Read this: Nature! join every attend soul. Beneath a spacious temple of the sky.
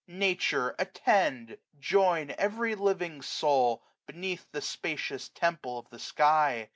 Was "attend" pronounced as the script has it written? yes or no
no